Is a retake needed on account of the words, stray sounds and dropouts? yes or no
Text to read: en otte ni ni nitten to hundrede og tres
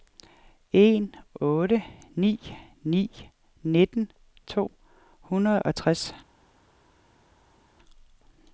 no